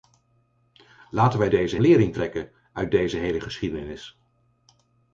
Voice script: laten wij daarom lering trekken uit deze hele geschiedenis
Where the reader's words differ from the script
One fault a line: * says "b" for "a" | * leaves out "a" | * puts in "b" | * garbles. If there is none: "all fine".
* says "deze" for "daarom"